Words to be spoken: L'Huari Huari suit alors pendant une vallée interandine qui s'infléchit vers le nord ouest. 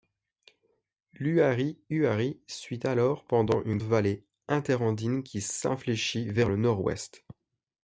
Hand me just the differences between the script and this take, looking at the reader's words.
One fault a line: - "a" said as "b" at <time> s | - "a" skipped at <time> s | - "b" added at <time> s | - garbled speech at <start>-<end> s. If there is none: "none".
none